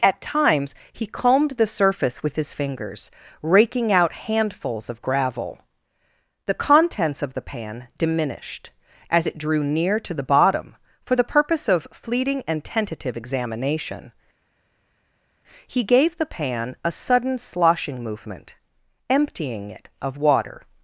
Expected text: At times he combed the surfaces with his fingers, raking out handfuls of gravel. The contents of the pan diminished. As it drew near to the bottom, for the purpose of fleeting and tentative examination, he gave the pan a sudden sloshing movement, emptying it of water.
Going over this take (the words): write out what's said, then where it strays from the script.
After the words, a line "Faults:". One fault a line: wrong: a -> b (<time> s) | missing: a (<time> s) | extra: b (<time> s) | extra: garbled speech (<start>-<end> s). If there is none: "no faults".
At times he combed the surface with his fingers, raking out handfuls of gravel. The contents of the pan diminished. As it drew near to the bottom, for the purpose of fleeting and tentative examination, he gave the pan a sudden sloshing movement, emptying it of water.
Faults:
wrong: surfaces -> surface (1.7 s)